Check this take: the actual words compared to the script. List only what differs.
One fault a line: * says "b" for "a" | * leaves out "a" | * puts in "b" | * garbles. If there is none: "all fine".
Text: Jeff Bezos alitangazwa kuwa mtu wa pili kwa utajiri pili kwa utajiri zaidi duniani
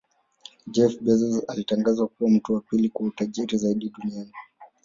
* leaves out "pili kwa utajiri"